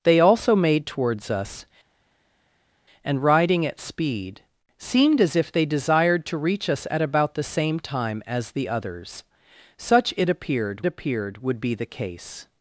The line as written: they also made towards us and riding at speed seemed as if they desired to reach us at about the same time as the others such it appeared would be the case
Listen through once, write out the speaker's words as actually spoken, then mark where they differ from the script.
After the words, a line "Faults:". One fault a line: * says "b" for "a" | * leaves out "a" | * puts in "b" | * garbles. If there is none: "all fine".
they also made towards us and riding at speed seemed as if they desired to reach us at about the same time as the others such it appeared appeared would be the case
Faults:
* puts in "appeared"